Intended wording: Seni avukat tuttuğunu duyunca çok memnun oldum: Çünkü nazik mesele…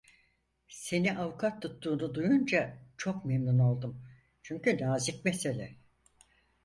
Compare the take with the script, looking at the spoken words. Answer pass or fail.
pass